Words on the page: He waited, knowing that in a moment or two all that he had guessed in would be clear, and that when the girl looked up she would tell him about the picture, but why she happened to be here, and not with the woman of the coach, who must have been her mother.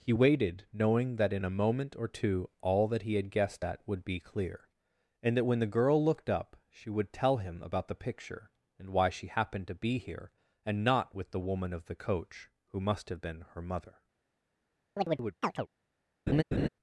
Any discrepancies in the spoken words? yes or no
yes